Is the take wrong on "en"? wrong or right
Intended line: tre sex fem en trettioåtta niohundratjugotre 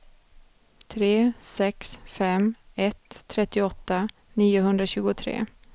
wrong